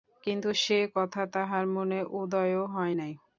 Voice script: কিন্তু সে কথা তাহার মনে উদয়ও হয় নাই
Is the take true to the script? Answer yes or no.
yes